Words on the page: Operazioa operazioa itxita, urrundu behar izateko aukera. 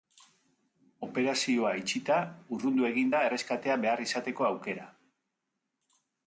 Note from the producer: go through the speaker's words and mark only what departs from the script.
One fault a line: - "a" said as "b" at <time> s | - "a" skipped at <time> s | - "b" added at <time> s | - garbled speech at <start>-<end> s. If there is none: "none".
- "operazioa" skipped at 1.7 s
- "egin da erreskatea" added at 2.9 s